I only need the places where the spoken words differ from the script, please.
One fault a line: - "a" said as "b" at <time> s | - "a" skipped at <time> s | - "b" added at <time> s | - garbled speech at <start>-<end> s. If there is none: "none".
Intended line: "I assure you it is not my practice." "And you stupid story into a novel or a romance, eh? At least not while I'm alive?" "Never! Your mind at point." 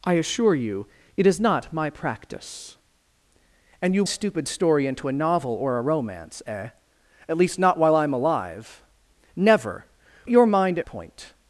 none